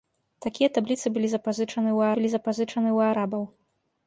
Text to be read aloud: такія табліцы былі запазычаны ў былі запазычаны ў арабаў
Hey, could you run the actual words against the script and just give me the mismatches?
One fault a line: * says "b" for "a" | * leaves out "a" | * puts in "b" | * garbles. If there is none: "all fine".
all fine